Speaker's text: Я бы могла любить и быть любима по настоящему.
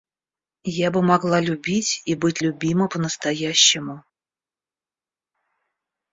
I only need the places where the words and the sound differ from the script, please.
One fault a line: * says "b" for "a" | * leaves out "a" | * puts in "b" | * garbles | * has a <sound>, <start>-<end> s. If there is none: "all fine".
all fine